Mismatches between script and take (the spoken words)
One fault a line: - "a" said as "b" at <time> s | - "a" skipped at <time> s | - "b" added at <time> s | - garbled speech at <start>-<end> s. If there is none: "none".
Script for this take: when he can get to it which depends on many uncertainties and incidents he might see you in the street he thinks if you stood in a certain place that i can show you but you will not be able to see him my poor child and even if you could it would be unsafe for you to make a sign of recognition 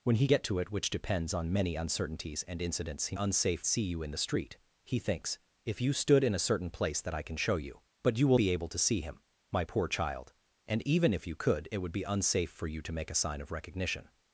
- "can" skipped at 0.3 s
- "might" said as "unsafe" at 3.1 s
- "not" skipped at 8.4 s